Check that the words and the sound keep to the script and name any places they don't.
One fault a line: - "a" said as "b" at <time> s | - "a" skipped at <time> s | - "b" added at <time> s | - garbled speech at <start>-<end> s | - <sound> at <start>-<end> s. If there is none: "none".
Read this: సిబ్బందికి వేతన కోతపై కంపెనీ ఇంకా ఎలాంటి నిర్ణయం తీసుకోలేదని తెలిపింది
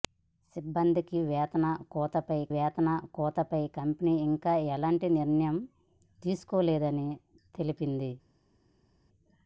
- "వేతన కోతపై" added at 2.5 s